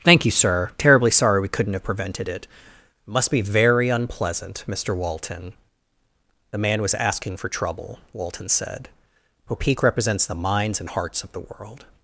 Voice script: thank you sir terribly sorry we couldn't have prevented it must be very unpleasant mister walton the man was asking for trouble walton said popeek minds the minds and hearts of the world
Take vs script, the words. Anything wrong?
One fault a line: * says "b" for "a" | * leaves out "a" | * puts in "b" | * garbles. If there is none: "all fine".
* says "represents" for "minds"